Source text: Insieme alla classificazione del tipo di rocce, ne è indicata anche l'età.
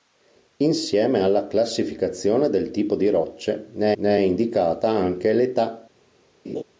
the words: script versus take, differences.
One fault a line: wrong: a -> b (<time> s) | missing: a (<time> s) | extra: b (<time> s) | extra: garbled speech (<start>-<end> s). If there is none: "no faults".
extra: ne (4.0 s)